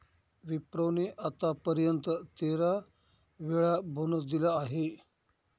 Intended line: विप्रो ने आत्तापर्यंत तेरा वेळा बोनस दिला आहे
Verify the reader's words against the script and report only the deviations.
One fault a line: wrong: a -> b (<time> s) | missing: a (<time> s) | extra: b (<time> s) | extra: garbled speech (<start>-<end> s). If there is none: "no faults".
no faults